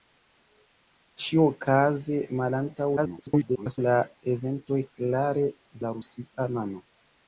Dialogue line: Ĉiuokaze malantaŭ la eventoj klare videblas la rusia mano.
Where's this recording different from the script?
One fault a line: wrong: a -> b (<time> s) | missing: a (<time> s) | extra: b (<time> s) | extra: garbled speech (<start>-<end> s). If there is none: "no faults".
extra: garbled speech (3.0-3.8 s)
missing: videblas (5.5 s)